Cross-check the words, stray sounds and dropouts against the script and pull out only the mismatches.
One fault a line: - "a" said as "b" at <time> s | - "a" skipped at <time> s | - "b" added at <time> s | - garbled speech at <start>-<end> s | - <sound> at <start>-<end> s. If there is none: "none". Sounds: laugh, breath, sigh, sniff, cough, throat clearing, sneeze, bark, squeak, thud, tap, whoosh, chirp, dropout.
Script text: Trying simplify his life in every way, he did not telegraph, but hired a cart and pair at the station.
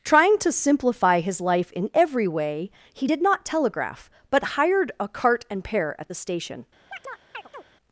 - "to" added at 0.4 s
- chirp at 6.9-7.6 s